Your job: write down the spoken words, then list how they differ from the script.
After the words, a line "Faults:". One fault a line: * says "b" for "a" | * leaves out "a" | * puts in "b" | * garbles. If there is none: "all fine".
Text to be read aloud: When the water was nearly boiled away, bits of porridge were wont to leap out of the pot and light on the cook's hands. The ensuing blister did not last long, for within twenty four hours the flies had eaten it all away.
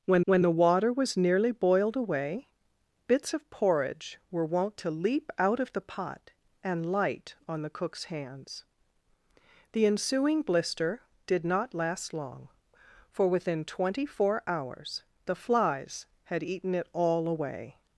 When when the water was nearly boiled away, bits of porridge were wont to leap out of the pot and light on the cook's hands. The ensuing blister did not last long, for within twenty four hours the flies had eaten it all away.
Faults:
* puts in "when"